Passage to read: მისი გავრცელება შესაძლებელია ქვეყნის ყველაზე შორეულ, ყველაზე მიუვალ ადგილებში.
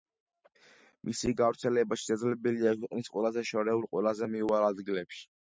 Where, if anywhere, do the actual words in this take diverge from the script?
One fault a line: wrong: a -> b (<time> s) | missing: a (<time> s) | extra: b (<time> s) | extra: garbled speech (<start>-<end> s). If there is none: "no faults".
no faults